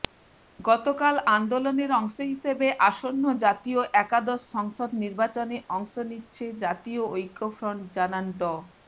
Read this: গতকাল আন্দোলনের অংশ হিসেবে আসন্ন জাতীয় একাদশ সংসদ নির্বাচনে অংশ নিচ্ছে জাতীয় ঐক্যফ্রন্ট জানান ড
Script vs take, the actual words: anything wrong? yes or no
no